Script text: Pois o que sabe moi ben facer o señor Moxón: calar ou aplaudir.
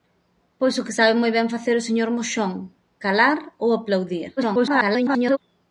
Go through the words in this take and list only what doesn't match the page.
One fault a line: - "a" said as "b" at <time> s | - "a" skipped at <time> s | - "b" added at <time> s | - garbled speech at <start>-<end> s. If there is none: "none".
- garbled speech at 4.4-5.4 s